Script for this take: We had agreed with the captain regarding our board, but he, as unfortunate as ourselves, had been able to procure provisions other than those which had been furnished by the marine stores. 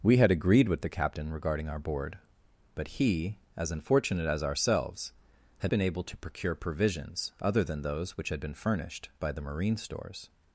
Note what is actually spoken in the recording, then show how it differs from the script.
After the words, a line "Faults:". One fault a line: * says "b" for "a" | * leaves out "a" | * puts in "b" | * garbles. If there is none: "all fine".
We had agreed with the captain regarding our board, but he, as unfortunate as ourselves, had been able to procure provisions other than those which had been furnished by the marine stores.
Faults:
all fine